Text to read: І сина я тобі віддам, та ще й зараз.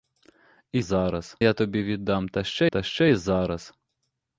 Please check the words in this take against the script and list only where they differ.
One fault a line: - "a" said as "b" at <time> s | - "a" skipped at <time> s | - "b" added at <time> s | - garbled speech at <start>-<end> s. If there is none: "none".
- "сина" said as "зараз" at 0.8 s
- "та ще" added at 2.7 s